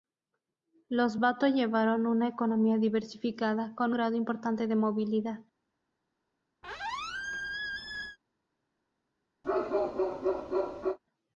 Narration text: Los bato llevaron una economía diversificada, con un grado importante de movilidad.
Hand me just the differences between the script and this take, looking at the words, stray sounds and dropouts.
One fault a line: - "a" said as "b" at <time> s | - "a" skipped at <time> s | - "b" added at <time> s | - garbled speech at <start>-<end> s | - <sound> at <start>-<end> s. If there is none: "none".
- "un" skipped at 3.9 s
- squeak at 6.6-8.2 s
- bark at 9.4-11.0 s